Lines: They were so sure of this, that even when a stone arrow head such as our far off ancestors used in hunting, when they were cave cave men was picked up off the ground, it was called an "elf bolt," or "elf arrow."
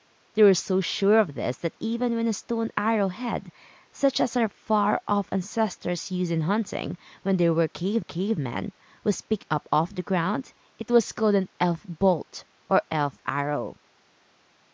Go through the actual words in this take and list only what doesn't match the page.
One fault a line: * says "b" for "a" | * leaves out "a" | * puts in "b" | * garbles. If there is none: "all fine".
all fine